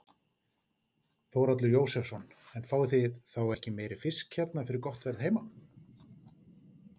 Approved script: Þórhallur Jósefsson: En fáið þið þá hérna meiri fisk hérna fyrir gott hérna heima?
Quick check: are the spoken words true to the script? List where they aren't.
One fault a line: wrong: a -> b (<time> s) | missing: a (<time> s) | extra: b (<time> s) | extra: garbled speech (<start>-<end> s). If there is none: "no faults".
wrong: hérna -> ekki (3.6 s)
wrong: hérna -> verð (5.1 s)